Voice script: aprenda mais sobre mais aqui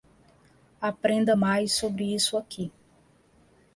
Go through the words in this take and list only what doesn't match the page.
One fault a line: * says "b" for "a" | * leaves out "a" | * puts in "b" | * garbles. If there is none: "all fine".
* says "isso" for "mais"